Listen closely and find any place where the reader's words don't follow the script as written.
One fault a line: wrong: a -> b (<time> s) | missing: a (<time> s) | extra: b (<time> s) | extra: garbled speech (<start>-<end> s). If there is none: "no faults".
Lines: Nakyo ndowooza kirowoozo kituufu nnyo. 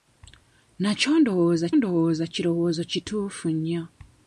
extra: ndowooza (1.8 s)